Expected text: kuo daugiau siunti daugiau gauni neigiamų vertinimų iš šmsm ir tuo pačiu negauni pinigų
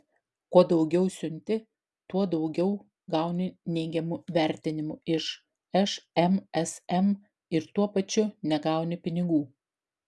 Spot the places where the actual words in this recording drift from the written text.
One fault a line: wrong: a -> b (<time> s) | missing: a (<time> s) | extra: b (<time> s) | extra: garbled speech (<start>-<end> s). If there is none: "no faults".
extra: tuo (2.1 s)